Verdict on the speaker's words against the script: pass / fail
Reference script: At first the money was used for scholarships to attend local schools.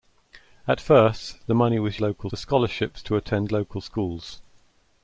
fail